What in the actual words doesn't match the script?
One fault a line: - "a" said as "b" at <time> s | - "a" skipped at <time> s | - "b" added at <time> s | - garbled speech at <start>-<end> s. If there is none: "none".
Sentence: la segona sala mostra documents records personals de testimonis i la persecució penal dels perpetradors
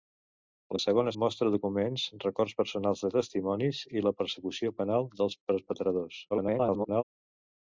- "sala" skipped at 1.1 s
- garbled speech at 6.3-7.0 s